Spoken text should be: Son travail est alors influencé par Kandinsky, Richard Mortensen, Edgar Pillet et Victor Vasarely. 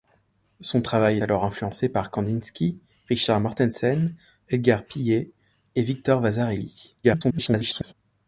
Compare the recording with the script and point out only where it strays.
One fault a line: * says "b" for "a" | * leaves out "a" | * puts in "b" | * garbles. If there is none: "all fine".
* leaves out "est"
* garbles